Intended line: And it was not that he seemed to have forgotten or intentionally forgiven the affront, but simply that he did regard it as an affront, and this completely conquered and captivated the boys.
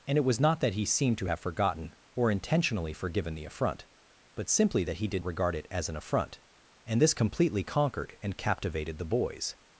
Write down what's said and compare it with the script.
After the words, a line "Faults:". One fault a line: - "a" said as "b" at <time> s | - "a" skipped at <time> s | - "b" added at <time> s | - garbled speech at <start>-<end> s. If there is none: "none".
And it was not that he seemed to have forgotten or intentionally forgiven the affront, but simply that he did regard it as an affront, and this completely conquered and captivated the boys.
Faults:
none